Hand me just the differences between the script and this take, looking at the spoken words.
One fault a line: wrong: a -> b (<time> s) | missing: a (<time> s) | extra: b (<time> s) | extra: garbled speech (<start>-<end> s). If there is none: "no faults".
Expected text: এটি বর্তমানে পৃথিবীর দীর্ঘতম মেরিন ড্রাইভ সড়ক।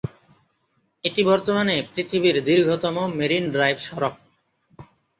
no faults